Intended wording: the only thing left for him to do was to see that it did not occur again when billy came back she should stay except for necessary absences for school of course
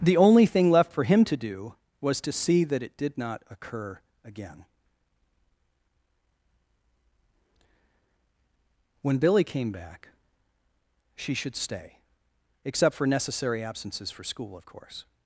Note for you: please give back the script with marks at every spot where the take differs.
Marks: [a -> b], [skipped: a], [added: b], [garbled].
the only thing left for him to do was to see that it did not occur again when billy came back she should stay except for necessary absences for school of course